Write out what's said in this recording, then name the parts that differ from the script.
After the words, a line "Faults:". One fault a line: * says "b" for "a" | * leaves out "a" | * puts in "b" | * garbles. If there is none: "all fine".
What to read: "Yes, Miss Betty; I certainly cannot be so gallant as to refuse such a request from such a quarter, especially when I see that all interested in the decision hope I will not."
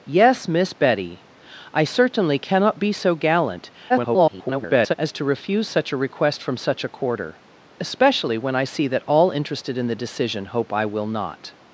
"Yes, Miss Betty; I certainly cannot be so gallant [garbled] as to refuse such a request from such a quarter, especially when I see that all interested in the decision hope I will not."
Faults:
* garbles